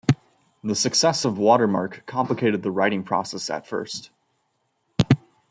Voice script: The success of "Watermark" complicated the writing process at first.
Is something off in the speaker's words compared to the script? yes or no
no